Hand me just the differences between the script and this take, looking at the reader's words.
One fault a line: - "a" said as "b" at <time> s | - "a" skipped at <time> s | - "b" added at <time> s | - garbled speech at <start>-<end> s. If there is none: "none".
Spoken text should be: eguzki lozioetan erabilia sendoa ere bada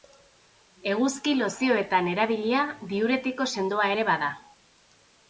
- "diuretiko" added at 3.0 s